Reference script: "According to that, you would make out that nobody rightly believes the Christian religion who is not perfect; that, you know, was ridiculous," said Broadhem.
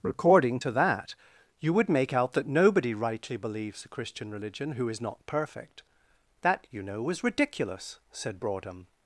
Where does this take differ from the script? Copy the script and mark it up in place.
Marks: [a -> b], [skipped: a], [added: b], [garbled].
"According to that, you would make out that nobody rightly believes the Christian religion who is not perfect; that, you know, was ridiculous," said Broadhem.